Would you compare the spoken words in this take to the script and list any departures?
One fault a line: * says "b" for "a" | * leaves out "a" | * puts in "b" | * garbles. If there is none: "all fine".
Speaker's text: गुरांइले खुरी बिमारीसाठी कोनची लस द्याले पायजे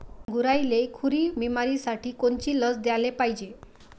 all fine